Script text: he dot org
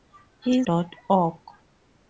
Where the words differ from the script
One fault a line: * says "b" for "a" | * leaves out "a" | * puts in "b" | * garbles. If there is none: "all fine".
all fine